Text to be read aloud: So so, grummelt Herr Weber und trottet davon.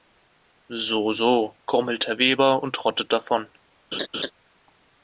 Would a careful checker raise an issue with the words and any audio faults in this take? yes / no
yes